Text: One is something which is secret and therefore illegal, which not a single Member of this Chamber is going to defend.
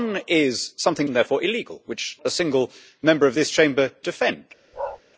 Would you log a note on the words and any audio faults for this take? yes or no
yes